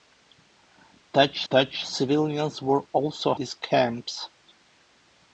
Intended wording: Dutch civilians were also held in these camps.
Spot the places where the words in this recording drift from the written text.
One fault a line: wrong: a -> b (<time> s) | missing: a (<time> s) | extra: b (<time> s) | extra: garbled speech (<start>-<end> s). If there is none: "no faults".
extra: dutch (1.5 s)
missing: held in (3.3 s)